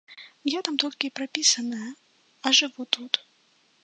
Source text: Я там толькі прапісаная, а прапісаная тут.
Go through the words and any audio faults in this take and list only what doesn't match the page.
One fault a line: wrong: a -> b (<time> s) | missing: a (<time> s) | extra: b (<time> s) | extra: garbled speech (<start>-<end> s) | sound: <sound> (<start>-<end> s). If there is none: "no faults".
wrong: прапісаная -> жыву (2.6 s)